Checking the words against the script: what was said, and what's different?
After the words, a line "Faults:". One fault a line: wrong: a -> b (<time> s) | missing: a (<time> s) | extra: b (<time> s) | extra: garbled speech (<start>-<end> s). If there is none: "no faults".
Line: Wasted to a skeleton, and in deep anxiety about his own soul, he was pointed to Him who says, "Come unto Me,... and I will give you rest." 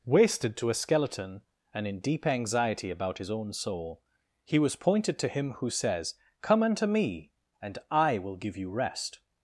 Wasted to a skeleton, and in deep anxiety about his own soul, he was pointed to Him who says, "Come unto Me,... and I will give you rest."
Faults:
no faults